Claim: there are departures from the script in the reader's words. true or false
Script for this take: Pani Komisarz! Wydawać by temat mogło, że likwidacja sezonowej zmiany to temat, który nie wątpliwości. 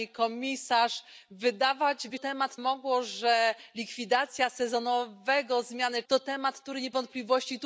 false